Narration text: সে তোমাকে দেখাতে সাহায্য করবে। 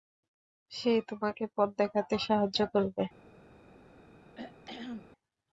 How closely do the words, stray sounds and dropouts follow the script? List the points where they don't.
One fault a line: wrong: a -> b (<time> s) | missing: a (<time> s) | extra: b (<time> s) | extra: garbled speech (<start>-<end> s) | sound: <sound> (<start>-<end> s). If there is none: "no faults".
extra: পথ (1.6 s)
sound: throat clearing (4.4-5.1 s)